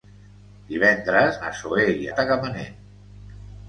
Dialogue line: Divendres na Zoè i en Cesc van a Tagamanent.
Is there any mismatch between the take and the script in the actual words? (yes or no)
yes